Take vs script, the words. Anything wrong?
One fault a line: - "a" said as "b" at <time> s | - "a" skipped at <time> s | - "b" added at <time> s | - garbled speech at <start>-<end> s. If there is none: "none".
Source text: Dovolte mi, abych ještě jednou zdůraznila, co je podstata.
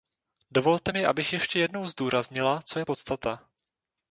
none